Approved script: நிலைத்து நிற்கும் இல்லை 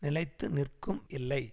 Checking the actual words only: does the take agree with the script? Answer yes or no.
yes